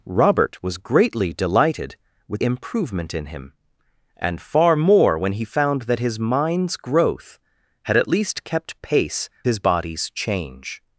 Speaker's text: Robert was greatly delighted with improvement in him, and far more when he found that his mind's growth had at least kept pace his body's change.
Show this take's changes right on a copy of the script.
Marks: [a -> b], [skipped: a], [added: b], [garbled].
Robert was greatly delighted with improvement in him, and far more when he found that his mind's growth had at least kept pace his body's change.